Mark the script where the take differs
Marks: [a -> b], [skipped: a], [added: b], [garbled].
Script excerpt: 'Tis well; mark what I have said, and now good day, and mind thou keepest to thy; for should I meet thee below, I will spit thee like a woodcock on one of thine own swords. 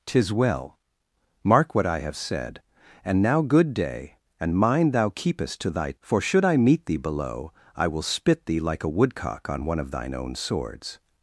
'Tis well; mark what I have said, and now good day, and mind thou keepest to thy; for should I meet thee below, I will spit thee like a woodcock on one of thine own swords.